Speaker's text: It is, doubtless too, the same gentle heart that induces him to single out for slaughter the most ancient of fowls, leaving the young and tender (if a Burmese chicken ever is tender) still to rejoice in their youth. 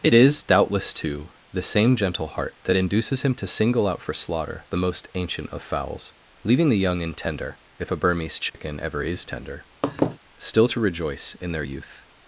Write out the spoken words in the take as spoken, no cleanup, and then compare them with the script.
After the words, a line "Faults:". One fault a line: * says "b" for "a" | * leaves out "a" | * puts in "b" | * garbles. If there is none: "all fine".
It is, doubtless too, the same gentle heart that induces him to single out for slaughter the most ancient of fowls, leaving the young and tender (if a Burmese chicken ever is tender) still to rejoice in their youth.
Faults:
all fine